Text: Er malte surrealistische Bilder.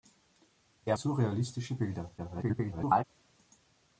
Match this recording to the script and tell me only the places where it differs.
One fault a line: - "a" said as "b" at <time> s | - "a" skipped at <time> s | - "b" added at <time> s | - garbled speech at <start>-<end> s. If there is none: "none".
- "malte" skipped at 1.0 s
- garbled speech at 2.2-3.0 s